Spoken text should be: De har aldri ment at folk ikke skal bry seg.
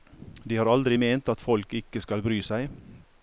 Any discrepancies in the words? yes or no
no